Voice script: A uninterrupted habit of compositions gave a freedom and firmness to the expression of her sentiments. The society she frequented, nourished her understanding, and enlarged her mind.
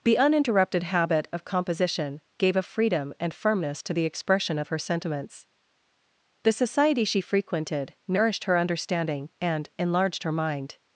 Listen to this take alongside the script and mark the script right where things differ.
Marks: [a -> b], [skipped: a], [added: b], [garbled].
[A -> The] uninterrupted habit of [compositions -> composition] gave a freedom and firmness to the expression of her sentiments. The society she frequented, nourished her understanding, and enlarged her mind.